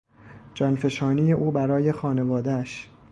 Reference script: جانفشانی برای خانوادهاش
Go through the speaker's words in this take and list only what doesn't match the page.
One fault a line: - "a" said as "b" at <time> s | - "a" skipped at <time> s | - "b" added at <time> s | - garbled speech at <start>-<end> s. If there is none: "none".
- "او" added at 1.3 s